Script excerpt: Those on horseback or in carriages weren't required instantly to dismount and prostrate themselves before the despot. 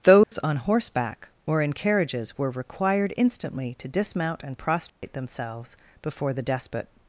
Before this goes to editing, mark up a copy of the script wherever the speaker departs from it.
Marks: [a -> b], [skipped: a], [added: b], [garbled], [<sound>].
Those [dropout] on horseback or in carriages [weren't -> were] required instantly to dismount and prostrate [dropout] themselves before the despot.